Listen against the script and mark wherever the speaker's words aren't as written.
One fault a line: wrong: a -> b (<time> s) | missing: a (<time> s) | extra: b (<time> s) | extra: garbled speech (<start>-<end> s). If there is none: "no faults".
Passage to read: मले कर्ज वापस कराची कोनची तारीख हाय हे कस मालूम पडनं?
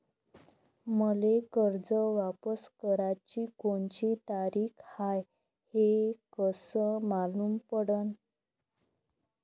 no faults